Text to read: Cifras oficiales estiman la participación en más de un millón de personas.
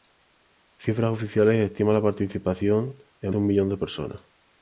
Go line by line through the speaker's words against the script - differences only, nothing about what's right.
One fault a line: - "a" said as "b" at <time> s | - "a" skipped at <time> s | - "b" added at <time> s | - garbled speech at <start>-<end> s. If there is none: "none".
- "más" skipped at 3.4 s